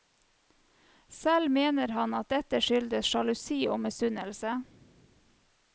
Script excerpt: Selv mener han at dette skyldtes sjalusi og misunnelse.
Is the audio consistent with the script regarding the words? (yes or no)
yes